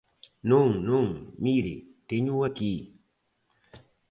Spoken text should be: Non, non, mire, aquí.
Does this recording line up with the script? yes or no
no